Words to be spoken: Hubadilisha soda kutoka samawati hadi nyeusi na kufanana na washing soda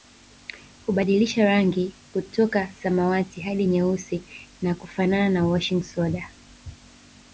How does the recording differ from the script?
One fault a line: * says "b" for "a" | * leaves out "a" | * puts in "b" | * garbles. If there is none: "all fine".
* says "rangi" for "soda"